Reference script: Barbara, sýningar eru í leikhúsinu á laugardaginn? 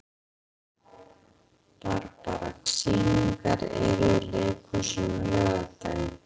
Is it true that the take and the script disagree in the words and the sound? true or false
false